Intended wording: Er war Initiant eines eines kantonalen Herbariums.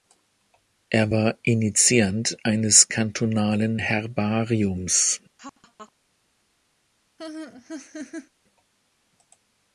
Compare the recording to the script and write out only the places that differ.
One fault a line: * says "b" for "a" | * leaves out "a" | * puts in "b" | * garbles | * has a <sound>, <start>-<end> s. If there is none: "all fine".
* leaves out "eines"
* has a laugh, 5.4-5.9 s
* has a laugh, 7.2-8.3 s